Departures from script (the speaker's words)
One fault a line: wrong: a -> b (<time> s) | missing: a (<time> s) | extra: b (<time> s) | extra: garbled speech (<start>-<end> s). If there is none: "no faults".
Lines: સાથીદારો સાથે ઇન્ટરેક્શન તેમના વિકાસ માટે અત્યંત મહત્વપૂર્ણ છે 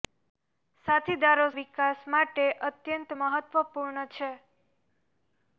missing: સાથે ઇન્ટરેક્શન તેમના (1.4 s)